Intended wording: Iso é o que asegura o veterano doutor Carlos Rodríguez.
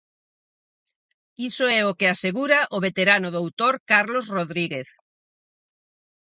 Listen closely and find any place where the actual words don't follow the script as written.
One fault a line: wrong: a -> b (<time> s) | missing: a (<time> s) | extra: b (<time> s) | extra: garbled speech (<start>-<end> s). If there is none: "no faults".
no faults